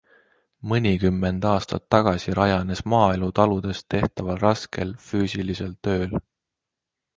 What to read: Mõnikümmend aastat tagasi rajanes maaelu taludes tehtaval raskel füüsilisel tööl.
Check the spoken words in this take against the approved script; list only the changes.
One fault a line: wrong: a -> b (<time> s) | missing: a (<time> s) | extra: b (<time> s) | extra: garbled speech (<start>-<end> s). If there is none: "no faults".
no faults